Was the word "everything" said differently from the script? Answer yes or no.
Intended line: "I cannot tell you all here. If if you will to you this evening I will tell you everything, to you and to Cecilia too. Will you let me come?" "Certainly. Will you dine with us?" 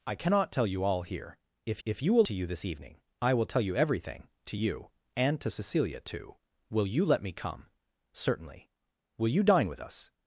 no